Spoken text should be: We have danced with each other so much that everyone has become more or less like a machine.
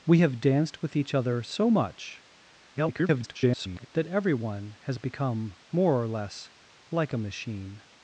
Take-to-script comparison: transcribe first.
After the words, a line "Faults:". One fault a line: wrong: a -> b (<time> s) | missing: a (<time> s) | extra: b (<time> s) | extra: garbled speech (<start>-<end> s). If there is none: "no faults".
We have danced with each other so much [garbled] that everyone has become more or less like a machine.
Faults:
extra: garbled speech (2.7-3.9 s)